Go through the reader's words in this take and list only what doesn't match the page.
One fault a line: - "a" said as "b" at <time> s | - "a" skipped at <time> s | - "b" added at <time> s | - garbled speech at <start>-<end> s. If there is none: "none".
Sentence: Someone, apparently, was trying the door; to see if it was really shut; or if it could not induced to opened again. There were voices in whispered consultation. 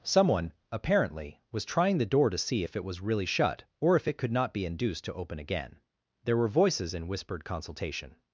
- "be" added at 4.5 s
- "opened" said as "open" at 5.1 s